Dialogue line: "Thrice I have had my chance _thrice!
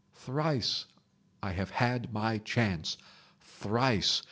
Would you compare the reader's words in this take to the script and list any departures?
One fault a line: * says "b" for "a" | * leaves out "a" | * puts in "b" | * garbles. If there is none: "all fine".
all fine